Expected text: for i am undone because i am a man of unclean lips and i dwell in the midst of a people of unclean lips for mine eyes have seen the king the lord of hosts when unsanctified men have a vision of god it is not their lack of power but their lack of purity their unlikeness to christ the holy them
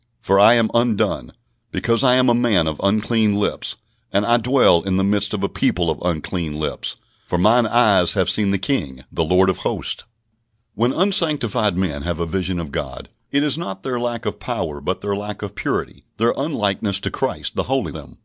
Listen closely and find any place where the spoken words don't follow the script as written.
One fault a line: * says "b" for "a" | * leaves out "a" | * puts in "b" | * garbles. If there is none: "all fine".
all fine